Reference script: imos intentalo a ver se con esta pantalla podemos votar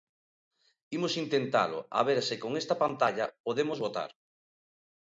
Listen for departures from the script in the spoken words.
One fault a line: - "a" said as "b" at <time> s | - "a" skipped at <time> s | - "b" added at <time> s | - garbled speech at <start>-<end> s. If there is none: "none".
none